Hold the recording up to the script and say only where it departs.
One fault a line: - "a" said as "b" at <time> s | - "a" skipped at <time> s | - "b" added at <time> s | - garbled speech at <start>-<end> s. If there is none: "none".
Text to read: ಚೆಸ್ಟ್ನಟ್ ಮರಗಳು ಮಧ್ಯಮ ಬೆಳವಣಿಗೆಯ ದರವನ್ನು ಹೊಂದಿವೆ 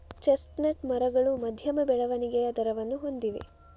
none